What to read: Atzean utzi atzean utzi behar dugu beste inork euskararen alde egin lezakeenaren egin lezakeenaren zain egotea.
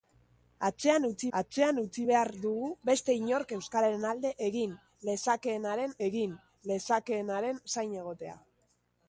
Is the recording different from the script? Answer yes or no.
no